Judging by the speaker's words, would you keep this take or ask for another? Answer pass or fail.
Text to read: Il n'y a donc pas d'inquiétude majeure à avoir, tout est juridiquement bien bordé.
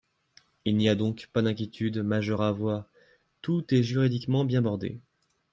pass